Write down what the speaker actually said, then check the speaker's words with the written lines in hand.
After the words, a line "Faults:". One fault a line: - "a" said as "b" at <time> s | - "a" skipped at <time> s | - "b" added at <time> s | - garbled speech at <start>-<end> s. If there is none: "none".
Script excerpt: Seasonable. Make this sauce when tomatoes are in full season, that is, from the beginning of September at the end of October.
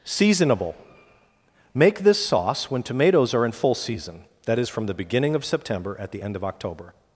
Seasonable. Make this sauce when tomatoes are in full season, that is, from the beginning of September at the end of October.
Faults:
none